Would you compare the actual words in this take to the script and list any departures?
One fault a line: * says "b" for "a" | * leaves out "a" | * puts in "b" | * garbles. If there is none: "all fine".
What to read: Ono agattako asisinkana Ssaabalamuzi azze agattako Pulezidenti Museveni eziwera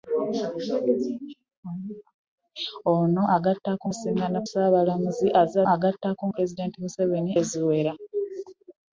all fine